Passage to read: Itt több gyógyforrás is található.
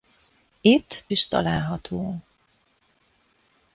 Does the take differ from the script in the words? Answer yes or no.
yes